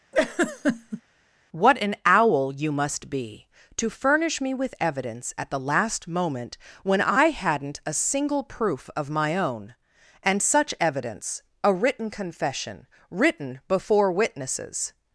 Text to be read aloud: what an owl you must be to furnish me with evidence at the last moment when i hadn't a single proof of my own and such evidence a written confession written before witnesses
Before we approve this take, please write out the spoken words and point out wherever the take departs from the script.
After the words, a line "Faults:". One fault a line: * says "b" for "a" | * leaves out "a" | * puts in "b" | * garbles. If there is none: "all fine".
what an owl you must be to furnish me with evidence at the last moment when i hadn't a single proof of my own and such evidence a written confession written before witnesses
Faults:
all fine